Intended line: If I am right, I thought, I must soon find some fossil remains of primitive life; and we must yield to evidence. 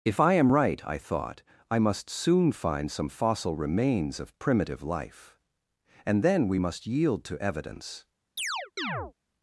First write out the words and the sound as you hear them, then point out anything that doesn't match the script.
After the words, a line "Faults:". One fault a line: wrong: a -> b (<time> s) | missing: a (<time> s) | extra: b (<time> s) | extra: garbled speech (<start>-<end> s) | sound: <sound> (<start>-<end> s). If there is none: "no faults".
If I am right, I thought, I must soon find some fossil remains of primitive life; and then we must yield to evidence.
Faults:
extra: then (6.2 s)
sound: chirp (8.4-9.1 s)